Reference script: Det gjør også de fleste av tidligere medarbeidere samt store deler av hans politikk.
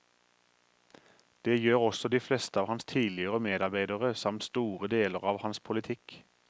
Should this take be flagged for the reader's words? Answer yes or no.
yes